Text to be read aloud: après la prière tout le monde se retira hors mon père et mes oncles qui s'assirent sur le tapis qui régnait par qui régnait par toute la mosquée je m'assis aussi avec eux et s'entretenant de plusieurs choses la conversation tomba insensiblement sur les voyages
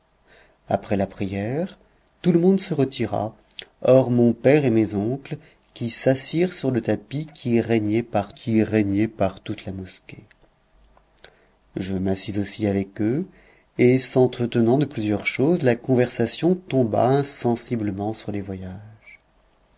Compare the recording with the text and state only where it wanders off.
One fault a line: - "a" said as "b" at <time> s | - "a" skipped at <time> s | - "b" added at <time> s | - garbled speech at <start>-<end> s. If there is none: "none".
none